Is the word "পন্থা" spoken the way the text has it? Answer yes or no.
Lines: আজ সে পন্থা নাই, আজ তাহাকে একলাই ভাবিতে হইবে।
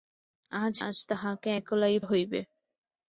no